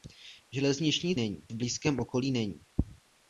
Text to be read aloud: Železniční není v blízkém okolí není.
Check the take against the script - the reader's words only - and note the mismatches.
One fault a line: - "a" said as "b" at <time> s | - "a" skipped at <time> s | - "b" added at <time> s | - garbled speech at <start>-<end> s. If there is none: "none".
none